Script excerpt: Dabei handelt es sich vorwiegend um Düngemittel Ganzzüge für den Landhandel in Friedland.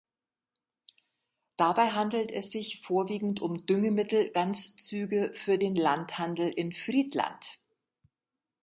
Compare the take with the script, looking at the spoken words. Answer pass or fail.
pass